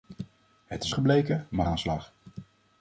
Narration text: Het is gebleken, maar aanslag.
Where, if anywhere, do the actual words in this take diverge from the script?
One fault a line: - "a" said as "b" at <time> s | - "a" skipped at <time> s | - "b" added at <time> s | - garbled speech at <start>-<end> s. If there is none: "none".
none